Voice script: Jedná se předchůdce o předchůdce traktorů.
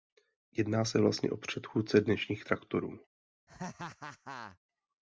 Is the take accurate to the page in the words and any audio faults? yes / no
no